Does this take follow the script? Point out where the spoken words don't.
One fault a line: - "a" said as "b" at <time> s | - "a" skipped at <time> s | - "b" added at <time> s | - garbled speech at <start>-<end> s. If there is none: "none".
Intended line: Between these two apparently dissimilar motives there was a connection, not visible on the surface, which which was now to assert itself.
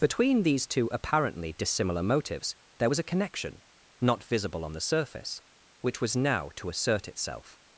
- "which" skipped at 6.0 s